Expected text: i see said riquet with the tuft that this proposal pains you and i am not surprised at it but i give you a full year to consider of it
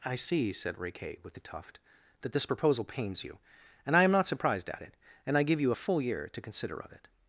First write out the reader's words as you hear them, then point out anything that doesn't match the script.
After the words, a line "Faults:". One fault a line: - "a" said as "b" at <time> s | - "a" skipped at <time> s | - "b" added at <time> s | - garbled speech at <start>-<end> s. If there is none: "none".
i see said riquet with the tuft that this proposal pains you and i am not surprised at it and i give you a full year to consider of it
Faults:
- "but" said as "and" at 5.3 s